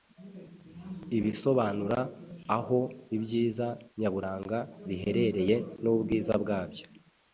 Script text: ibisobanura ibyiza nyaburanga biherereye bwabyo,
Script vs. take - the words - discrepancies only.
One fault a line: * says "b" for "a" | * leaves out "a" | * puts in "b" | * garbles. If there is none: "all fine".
* puts in "aho"
* puts in "n'ubwiza"